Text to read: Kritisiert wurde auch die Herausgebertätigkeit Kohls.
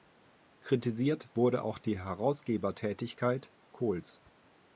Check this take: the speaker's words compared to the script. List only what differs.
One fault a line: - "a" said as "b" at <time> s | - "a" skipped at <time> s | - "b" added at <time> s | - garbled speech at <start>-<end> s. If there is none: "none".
none